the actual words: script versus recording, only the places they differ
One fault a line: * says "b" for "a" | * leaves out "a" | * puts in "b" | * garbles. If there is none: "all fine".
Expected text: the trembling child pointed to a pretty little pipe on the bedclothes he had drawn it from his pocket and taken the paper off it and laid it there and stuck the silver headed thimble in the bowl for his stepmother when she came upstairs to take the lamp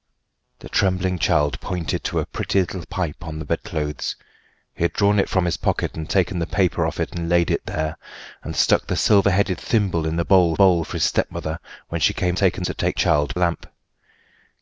* puts in "bowl"
* says "taken" for "upstairs"
* says "child" for "the"